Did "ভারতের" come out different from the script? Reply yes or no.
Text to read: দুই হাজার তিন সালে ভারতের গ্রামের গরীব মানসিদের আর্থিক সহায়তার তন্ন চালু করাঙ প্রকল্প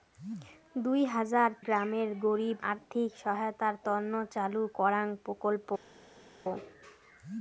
yes